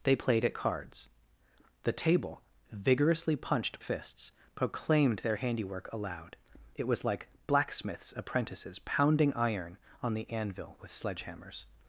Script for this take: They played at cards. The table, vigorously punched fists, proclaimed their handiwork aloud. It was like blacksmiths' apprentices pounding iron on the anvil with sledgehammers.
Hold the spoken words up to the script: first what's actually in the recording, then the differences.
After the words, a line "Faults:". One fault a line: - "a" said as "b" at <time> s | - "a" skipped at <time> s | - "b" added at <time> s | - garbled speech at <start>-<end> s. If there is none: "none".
They played at cards. The table, vigorously punched fists, proclaimed their handiwork aloud. It was like blacksmiths' apprentices pounding iron on the anvil with sledgehammers.
Faults:
none